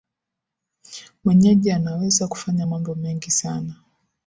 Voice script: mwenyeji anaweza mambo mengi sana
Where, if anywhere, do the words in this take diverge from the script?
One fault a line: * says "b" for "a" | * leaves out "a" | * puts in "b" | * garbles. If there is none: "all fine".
* puts in "kufanya"